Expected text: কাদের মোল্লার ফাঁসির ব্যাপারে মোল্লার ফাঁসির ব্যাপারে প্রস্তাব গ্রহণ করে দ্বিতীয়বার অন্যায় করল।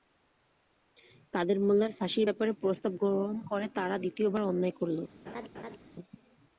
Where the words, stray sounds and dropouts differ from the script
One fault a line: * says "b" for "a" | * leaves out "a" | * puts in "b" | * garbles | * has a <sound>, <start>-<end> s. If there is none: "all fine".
* leaves out "মোল্লার ফাঁসির ব্যাপারে"
* puts in "তারা"
* has a laugh, 5.3-5.8 s